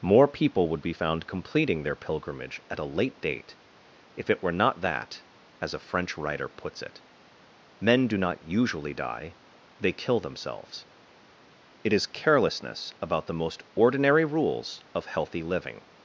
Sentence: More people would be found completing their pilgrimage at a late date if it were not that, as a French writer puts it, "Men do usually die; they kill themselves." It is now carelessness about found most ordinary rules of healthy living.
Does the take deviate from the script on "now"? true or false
true